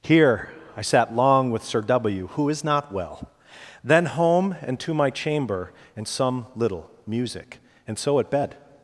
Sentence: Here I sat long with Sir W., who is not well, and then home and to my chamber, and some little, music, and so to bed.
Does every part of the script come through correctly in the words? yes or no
no